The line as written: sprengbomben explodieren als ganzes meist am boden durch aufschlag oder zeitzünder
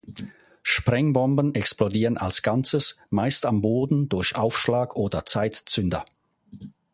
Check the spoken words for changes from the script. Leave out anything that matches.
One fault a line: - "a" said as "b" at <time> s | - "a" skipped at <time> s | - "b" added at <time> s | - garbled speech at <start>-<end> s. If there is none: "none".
none